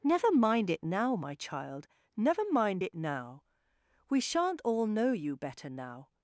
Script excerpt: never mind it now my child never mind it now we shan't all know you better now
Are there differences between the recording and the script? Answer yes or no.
no